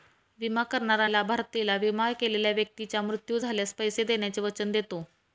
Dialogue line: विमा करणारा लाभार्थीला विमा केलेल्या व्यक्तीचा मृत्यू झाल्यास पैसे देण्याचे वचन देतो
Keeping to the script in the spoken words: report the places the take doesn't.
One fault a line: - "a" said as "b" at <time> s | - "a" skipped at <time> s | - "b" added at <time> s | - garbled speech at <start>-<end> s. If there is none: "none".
none